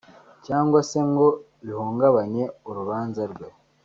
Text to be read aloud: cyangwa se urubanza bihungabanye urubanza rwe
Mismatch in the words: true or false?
true